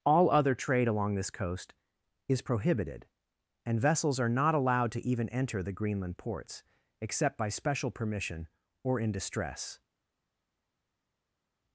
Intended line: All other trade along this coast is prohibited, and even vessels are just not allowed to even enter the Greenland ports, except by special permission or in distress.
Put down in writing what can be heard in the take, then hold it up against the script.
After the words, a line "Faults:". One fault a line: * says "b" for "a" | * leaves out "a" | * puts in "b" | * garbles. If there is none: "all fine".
All other trade along this coast is prohibited, and vessels are not allowed to even enter the Greenland ports, except by special permission or in distress.
Faults:
* leaves out "even"
* leaves out "just"